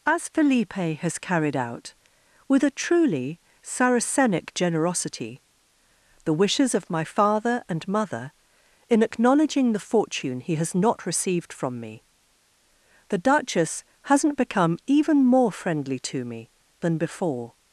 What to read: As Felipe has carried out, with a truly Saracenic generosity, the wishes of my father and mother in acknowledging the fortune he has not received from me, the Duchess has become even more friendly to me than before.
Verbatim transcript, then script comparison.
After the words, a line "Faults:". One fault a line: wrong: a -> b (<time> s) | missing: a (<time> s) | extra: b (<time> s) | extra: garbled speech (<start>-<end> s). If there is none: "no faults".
As Felipe has carried out, with a truly Saracenic generosity, the wishes of my father and mother in acknowledging the fortune he has not received from me, the Duchess hasn't become even more friendly to me than before.
Faults:
wrong: has -> hasn't (14.0 s)